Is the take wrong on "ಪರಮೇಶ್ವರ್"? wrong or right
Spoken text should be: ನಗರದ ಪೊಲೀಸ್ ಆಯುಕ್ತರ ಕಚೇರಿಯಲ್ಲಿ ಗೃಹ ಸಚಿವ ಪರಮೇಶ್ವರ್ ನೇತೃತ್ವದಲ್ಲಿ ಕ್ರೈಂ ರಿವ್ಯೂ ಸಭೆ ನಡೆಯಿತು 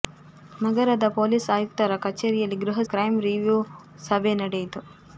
wrong